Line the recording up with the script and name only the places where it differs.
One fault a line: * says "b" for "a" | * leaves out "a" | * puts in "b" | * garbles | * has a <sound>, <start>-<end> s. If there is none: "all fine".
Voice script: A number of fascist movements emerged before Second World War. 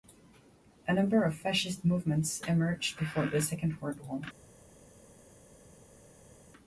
* puts in "the"